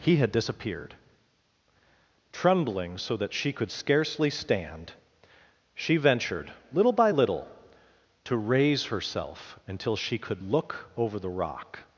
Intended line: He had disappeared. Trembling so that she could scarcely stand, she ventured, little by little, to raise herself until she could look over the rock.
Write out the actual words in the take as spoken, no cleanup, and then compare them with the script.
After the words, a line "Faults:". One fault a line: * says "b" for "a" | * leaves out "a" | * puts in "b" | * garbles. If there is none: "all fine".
He had disappeared. Trembling so that she could scarcely stand, she ventured, little by little, to raise herself until she could look over the rock.
Faults:
all fine